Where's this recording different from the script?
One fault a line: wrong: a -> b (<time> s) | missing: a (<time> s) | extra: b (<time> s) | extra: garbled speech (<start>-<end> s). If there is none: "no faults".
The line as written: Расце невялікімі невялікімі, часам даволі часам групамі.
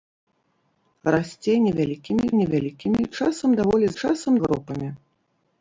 no faults